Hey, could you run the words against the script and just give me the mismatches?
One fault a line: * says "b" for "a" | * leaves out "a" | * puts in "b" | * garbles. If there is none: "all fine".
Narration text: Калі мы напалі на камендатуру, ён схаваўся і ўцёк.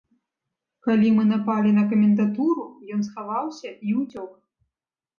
all fine